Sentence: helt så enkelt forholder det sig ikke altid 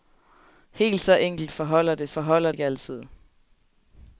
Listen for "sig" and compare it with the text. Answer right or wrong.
wrong